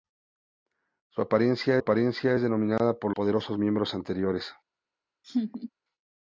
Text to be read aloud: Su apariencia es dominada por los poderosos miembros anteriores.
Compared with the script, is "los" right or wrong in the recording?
wrong